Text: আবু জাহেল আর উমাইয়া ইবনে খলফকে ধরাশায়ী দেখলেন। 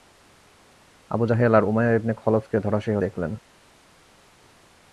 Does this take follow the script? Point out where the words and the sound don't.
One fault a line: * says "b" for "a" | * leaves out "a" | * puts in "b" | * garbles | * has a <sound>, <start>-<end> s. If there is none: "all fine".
all fine